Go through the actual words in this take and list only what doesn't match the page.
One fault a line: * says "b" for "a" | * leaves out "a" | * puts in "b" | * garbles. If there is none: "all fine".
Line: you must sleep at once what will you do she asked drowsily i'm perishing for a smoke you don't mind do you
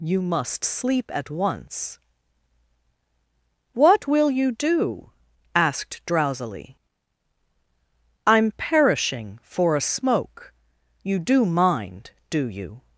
* leaves out "she"
* says "do" for "don't"